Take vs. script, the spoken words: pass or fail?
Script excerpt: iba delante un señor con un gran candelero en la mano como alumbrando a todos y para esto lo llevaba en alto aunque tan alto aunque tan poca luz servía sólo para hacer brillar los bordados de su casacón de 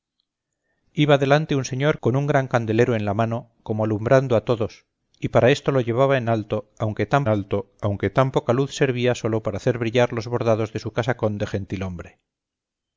pass